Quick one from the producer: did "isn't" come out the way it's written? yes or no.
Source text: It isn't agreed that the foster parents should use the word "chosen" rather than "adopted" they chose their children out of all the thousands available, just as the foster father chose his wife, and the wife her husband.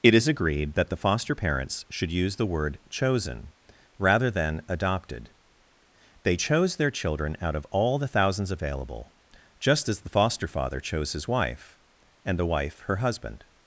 no